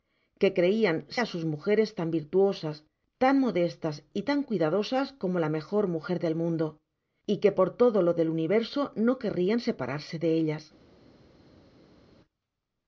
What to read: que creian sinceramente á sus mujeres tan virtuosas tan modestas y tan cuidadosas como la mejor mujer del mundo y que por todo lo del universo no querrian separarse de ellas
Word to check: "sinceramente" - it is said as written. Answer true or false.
false